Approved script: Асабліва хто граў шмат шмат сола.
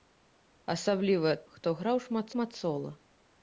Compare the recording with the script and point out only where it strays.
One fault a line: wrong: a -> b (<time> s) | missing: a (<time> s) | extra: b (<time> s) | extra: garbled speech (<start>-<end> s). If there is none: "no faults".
no faults